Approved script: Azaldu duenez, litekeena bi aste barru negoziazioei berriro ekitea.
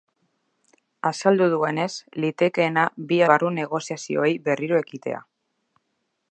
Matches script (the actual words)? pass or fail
fail